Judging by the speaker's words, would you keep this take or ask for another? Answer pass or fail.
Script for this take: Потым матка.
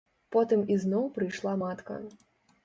fail